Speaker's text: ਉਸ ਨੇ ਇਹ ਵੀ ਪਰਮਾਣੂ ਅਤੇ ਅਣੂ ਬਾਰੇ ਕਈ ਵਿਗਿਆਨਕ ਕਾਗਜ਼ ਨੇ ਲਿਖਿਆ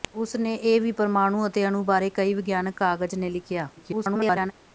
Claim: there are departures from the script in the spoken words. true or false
true